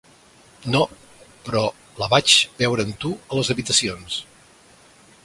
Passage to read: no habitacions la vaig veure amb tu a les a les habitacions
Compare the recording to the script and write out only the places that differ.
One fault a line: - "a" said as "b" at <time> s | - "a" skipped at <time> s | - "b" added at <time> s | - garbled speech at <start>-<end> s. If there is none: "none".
- "habitacions" said as "però" at 1.5 s
- "a les" skipped at 3.5 s